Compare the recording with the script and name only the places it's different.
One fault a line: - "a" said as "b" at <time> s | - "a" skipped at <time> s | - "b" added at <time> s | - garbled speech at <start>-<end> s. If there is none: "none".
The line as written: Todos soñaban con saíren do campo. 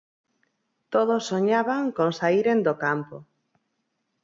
none